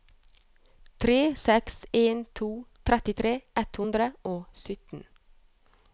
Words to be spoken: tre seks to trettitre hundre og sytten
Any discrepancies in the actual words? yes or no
yes